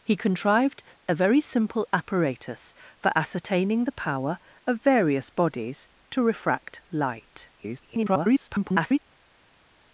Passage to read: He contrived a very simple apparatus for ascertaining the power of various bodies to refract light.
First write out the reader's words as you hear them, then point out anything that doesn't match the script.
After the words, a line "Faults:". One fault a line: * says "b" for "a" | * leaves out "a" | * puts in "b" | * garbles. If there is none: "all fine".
He contrived a very simple apparatus for ascertaining the power of various bodies to refract light. [garbled]
Faults:
* garbles